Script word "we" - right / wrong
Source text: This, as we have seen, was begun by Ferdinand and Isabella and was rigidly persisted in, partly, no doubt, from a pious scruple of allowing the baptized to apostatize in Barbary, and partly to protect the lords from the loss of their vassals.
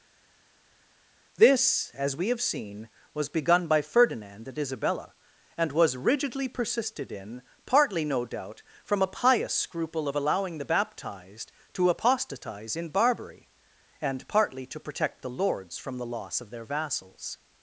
right